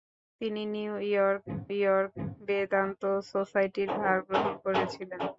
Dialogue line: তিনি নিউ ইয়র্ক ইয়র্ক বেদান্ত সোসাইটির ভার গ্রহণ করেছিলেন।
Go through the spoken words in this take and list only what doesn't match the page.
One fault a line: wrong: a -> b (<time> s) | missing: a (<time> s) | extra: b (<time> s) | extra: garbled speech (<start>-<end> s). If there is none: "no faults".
no faults